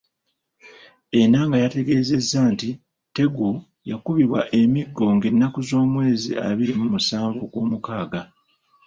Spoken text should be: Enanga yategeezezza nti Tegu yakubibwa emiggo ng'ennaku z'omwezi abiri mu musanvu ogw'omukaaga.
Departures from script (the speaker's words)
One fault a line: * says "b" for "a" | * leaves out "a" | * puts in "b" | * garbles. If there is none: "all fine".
all fine